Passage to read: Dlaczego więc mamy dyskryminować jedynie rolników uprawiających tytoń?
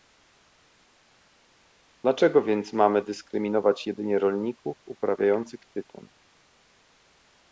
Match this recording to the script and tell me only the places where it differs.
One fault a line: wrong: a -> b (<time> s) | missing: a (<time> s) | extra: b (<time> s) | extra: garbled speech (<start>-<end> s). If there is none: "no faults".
no faults